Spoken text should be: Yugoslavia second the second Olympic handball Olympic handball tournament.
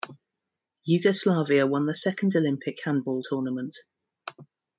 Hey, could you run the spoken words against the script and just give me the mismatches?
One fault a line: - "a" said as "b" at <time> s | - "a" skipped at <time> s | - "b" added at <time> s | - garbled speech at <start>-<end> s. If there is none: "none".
- "second" said as "won" at 1.7 s
- "Olympic handball" skipped at 3.2 s